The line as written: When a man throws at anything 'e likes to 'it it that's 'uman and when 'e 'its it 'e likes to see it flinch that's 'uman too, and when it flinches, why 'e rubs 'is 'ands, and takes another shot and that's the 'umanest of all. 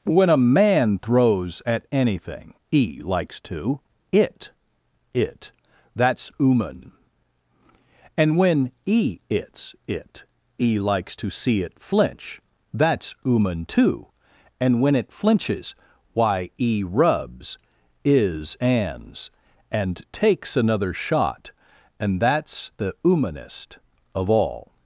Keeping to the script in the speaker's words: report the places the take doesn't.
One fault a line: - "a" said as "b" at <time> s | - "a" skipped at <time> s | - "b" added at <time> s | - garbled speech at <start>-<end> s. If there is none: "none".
none